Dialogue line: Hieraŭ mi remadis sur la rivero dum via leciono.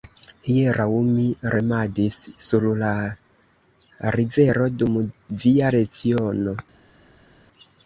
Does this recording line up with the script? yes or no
yes